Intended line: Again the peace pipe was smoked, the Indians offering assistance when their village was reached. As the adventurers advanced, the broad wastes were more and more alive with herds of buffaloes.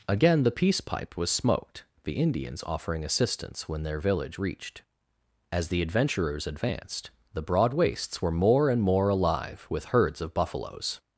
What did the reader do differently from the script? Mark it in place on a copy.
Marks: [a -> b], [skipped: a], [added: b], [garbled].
Again the peace pipe was smoked, the Indians offering assistance when their village [skipped: was] reached. As the adventurers advanced, the broad wastes were more and more alive with herds of buffaloes.